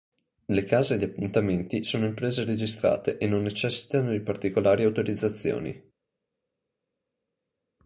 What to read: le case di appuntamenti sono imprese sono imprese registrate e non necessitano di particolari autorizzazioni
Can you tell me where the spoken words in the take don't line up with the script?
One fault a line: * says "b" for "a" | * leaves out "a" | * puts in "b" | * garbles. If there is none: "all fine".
* leaves out "sono imprese"